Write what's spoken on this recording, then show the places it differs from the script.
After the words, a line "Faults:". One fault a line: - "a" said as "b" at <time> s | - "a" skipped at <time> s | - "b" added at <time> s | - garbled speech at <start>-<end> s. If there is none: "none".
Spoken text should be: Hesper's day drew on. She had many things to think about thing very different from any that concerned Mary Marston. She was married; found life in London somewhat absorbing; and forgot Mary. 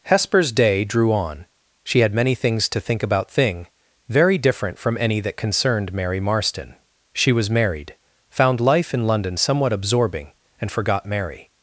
Hesper's day drew on. She had many things to think about thing very different from any that concerned Mary Marston. She was married; found life in London somewhat absorbing; and forgot Mary.
Faults:
none